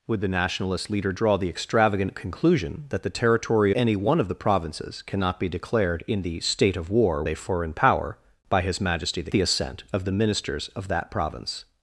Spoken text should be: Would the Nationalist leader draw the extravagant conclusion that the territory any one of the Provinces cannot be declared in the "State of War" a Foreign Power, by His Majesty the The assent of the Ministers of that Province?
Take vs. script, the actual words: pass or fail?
pass